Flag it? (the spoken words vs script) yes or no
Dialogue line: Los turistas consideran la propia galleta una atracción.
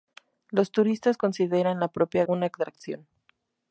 yes